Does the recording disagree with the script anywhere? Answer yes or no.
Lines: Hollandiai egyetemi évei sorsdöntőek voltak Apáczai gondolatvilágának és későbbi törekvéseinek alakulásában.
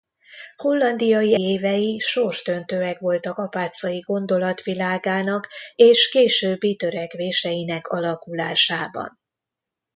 yes